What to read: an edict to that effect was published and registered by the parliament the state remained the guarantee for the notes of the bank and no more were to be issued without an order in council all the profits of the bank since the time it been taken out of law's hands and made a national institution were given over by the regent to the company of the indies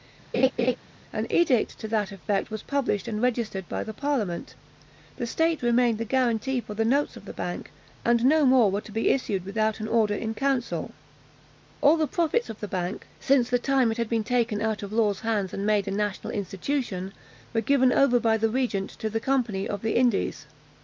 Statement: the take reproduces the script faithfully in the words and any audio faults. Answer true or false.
false